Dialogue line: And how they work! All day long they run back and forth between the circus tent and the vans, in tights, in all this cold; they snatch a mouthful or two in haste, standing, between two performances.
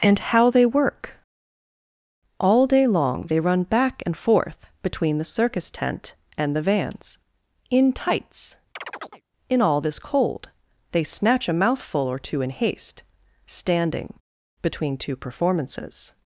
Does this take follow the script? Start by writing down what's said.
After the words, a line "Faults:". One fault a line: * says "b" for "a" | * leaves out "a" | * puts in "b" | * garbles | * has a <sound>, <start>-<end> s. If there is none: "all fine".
And how they work! All day long they run back and forth between the circus tent and the vans, in tights, in all this cold; they snatch a mouthful or two in haste, standing, between two performances.
Faults:
* has a chirp, 8.8-9.2 s